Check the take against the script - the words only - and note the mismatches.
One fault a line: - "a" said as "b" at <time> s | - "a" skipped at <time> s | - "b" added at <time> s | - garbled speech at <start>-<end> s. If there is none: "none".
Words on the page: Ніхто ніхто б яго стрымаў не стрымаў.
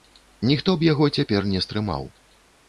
- "ніхто" skipped at 0.7 s
- "стрымаў" said as "цяпер" at 1.2 s